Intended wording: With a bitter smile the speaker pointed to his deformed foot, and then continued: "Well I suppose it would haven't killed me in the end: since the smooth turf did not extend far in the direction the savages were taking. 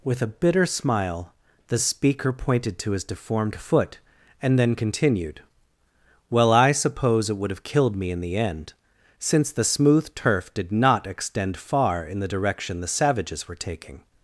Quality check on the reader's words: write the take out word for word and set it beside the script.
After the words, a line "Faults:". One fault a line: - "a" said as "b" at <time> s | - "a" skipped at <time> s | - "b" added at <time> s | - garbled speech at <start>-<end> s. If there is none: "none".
With a bitter smile the speaker pointed to his deformed foot, and then continued: "Well I suppose it would have killed me in the end: since the smooth turf did not extend far in the direction the savages were taking.
Faults:
- "haven't" said as "have" at 7.5 s